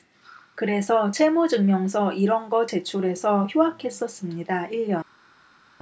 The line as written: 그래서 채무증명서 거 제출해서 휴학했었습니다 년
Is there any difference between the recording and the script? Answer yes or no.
yes